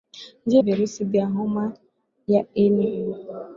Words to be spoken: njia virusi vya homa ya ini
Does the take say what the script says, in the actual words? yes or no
yes